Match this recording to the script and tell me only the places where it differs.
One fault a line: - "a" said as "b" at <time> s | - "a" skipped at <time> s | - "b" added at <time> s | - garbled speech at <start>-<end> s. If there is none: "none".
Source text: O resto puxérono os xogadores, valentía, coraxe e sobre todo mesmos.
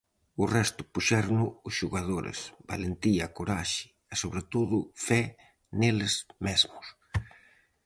- "fe neles" added at 5.1 s